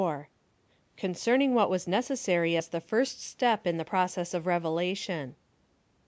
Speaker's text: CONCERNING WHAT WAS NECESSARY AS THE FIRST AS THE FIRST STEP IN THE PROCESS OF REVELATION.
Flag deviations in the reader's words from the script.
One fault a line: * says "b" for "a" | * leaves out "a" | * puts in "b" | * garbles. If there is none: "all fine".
* leaves out "AS THE FIRST"